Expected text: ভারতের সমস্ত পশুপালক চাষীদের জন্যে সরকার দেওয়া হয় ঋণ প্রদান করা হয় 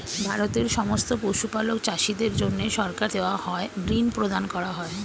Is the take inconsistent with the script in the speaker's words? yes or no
no